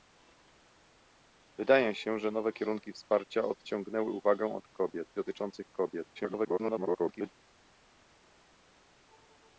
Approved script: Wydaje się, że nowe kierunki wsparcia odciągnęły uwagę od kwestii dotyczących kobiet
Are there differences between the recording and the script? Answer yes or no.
yes